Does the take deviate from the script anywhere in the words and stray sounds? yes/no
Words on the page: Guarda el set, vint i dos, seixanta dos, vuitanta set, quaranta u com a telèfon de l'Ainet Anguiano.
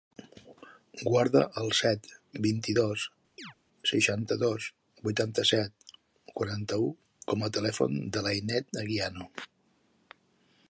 yes